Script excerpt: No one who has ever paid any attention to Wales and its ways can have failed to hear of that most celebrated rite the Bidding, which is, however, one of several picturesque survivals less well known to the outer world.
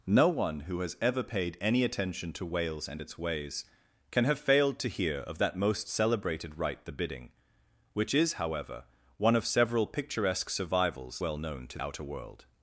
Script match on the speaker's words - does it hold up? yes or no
no